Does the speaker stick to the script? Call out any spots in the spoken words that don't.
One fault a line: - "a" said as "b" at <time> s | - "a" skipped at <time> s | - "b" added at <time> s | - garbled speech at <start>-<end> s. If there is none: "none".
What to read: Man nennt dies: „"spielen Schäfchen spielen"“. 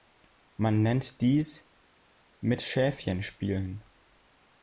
- "spielen" said as "mit" at 2.4 s